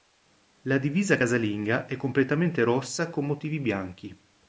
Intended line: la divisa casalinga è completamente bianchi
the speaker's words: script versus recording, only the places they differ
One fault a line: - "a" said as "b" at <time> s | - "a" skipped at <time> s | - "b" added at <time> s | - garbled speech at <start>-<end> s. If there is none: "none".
- "rossa con motivi" added at 2.6 s